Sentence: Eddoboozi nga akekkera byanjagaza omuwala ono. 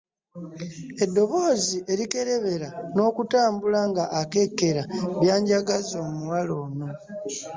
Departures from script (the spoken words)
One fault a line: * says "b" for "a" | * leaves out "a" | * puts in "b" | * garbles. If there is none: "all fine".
* puts in "erikerebera n'okutambula"